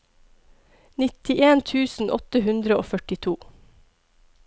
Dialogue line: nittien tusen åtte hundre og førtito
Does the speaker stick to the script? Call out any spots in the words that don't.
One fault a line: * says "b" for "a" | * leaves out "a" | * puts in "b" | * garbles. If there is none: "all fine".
all fine